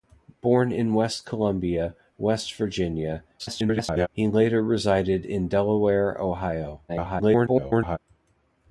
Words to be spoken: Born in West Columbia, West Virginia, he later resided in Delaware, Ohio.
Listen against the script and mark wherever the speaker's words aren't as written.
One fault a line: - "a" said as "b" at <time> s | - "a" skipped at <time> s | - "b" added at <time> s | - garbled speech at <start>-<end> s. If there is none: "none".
- garbled speech at 3.4-4.1 s
- garbled speech at 6.9-8.0 s